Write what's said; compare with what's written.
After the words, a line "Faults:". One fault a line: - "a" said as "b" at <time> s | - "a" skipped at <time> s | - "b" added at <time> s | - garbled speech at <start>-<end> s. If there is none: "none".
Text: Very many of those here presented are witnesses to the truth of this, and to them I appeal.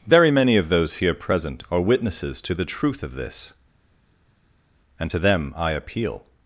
Very many of those here present are witnesses to the truth of this, and to them I appeal.
Faults:
- "presented" said as "present" at 1.1 s